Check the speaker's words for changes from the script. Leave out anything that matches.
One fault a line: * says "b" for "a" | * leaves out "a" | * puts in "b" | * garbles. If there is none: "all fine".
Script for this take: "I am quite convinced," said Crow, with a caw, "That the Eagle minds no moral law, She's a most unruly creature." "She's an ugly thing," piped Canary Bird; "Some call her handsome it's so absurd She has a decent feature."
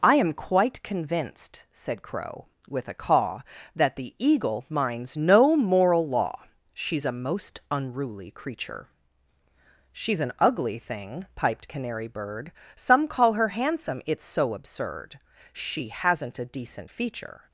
* says "hasn't" for "has"